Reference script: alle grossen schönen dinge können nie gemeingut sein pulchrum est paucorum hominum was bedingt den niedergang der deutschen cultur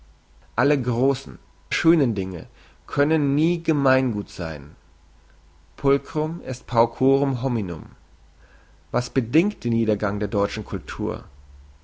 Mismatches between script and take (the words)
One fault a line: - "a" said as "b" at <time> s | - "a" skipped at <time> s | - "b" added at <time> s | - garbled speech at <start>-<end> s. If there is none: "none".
none